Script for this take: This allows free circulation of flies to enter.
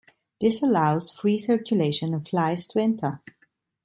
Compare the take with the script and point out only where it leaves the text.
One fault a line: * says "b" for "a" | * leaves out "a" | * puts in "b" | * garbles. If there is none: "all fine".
all fine